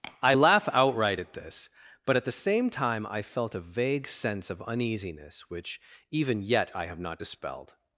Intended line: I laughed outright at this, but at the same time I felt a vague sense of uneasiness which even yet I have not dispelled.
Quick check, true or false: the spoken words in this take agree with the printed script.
false